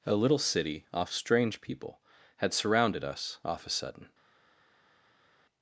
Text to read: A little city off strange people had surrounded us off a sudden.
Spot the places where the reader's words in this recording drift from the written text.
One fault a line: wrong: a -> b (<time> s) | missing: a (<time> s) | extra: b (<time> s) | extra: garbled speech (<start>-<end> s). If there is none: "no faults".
no faults